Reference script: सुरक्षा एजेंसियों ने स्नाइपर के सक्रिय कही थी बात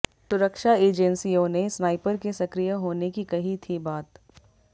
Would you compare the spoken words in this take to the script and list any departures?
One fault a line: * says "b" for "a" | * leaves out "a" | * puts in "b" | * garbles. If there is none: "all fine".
* puts in "होने की"